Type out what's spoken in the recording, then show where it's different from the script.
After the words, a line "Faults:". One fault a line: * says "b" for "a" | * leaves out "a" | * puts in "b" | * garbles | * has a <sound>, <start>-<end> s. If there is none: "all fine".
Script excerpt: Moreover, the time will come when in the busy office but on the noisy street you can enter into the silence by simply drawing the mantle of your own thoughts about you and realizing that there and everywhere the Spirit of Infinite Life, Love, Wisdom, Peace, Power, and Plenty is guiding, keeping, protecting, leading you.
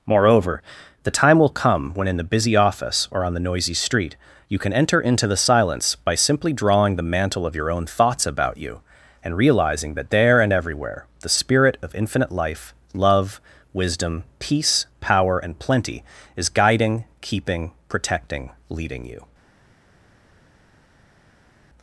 Moreover, the time will come when in the busy office or on the noisy street you can enter into the silence by simply drawing the mantle of your own thoughts about you and realizing that there and everywhere the Spirit of Infinite Life, Love, Wisdom, Peace, Power, and Plenty is guiding, keeping, protecting, leading you.
Faults:
* says "or" for "but"